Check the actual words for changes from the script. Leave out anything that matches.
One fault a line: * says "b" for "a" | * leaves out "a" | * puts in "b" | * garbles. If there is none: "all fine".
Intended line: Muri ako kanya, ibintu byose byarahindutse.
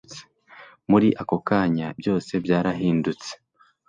* leaves out "ibintu"